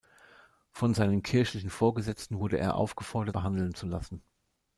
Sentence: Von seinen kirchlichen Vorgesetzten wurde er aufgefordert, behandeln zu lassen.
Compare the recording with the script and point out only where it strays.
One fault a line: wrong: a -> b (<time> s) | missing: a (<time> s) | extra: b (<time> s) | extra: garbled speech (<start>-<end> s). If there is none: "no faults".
no faults